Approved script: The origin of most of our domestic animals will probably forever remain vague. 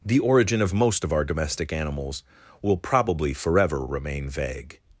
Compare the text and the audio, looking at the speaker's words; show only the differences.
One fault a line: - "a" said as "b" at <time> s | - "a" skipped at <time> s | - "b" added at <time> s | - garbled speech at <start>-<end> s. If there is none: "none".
none